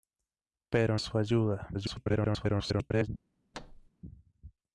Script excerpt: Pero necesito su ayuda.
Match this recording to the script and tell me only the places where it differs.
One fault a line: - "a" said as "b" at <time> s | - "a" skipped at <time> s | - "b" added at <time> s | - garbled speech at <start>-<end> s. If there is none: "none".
- "necesito" skipped at 1.0 s
- garbled speech at 1.7-3.1 s